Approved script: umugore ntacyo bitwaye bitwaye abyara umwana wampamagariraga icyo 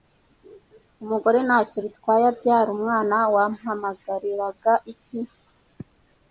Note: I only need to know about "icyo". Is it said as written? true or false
false